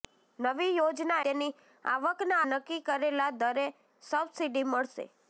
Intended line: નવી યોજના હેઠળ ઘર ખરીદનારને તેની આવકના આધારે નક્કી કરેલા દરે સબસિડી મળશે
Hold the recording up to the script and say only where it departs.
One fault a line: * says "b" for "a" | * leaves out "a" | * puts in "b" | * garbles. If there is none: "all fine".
* leaves out "હેઠળ ઘર ખરીદનારને"
* leaves out "આધારે"